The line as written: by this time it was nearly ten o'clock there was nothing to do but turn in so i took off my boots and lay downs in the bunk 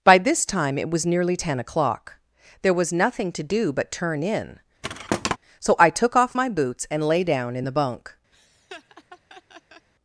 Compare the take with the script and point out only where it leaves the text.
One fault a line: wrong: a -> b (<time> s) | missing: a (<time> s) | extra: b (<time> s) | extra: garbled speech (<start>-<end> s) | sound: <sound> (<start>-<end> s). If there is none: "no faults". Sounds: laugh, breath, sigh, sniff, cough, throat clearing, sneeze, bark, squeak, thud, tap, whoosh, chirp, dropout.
sound: thud (4.8-5.4 s)
wrong: downs -> down (7.2 s)
sound: laugh (8.3-9.9 s)